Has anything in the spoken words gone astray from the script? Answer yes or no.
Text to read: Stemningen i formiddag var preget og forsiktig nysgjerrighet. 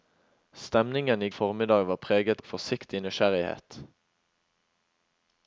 no